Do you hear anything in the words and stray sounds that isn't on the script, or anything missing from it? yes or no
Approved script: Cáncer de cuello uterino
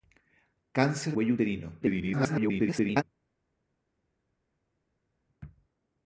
yes